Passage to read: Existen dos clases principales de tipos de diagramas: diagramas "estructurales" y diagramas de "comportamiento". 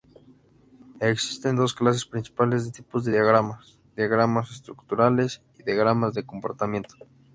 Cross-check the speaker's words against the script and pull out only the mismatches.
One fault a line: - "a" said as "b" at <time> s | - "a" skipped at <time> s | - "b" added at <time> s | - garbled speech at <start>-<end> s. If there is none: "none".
none